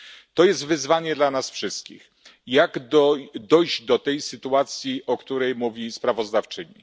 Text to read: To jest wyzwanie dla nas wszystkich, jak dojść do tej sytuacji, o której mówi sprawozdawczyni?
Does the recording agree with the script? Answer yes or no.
yes